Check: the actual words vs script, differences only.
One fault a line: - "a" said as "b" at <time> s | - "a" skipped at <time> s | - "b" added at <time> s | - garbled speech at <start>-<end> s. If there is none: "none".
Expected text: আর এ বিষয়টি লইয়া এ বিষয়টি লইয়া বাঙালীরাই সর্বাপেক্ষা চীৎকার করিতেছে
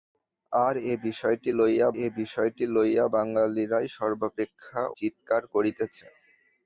none